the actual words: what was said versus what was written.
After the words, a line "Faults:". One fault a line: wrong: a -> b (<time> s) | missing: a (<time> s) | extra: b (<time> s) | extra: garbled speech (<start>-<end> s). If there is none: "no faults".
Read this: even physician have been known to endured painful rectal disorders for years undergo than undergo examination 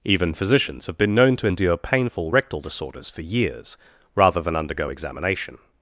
even physicians have been known to endure painful rectal disorders for years rather than undergo examination
Faults:
wrong: physician -> physicians (0.3 s)
wrong: endured -> endure (1.4 s)
wrong: undergo -> rather (4.1 s)